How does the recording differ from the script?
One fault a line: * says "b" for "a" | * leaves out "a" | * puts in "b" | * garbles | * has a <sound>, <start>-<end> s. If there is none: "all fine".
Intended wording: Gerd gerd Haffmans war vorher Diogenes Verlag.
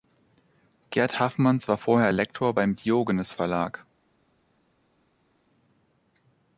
* leaves out "gerd"
* puts in "Lektor beim"